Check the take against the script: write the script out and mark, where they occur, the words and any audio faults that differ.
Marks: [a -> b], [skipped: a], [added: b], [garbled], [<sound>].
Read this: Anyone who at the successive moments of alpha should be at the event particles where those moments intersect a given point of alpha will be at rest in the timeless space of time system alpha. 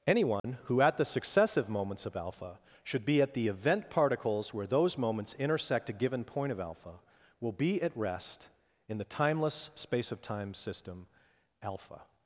Anyone [dropout] who at the successive moments of alpha should be at the event particles where those moments intersect a given point of alpha will be at rest in the timeless space of time system alpha.